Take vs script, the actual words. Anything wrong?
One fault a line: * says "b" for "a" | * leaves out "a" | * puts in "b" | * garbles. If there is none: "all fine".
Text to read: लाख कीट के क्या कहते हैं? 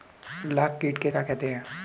all fine